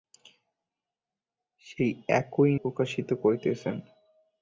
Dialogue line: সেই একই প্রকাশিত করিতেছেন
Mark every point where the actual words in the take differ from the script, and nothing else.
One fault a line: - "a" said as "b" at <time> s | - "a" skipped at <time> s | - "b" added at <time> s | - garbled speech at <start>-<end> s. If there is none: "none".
none